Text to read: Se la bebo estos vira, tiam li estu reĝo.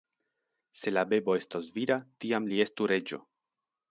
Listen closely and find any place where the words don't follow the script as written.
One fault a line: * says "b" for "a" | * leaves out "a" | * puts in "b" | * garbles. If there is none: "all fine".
all fine